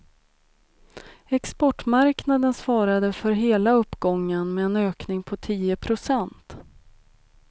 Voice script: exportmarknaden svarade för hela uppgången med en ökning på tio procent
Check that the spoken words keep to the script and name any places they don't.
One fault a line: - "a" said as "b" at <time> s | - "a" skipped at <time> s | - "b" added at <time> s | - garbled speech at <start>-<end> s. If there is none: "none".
none